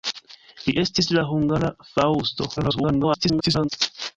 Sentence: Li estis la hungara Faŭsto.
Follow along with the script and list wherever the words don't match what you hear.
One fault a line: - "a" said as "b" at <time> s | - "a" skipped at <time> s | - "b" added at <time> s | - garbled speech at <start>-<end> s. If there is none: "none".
- garbled speech at 2.6-3.7 s